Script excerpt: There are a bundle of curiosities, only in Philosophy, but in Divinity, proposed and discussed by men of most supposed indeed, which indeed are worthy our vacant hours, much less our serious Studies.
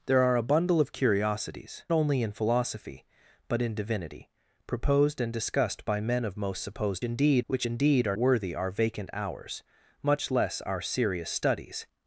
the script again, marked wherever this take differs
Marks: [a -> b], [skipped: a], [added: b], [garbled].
There are a bundle of curiosities, only in Philosophy, but in Divinity, proposed and discussed by men of most supposed indeed, which indeed are worthy our vacant hours, much less our serious Studies.